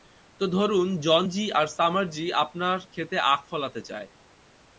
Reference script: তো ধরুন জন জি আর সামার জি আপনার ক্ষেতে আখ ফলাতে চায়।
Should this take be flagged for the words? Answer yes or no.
no